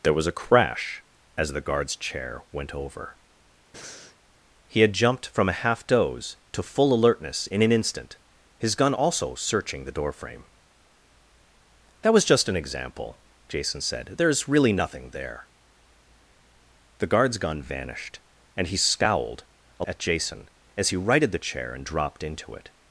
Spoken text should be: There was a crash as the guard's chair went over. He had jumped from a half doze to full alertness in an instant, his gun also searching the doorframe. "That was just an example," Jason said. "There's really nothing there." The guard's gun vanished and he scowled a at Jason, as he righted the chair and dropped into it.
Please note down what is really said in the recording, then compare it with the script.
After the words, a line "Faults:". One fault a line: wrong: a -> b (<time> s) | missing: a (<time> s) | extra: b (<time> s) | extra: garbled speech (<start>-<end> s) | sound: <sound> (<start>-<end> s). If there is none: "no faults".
There was a crash as the guard's chair went over. He had jumped from a half doze to full alertness in an instant, his gun also searching the doorframe. "That was just an example," Jason said. "There's really nothing there." The guard's gun vanished and he scowled a at Jason, as he righted the chair and dropped into it.
Faults:
sound: breath (3.7-4.2 s)